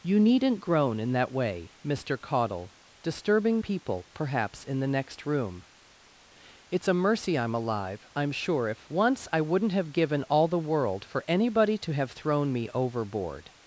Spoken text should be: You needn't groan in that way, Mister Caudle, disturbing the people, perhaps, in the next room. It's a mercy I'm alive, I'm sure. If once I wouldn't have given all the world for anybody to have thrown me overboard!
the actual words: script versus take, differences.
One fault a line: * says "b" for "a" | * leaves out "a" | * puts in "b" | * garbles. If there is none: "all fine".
* leaves out "the"